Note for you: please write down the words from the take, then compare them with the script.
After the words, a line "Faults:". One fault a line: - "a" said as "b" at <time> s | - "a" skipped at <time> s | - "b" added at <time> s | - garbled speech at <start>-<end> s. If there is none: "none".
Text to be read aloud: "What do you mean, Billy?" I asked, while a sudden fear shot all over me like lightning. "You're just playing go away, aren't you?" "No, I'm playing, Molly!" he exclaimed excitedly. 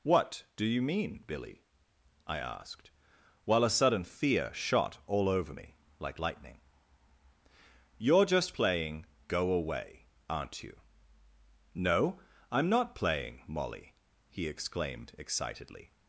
"What do you mean, Billy?" I asked, while a sudden fear shot all over me like lightning. "You're just playing go away, aren't you?" "No, I'm not playing, Molly!" he exclaimed excitedly.
Faults:
- "not" added at 12.7 s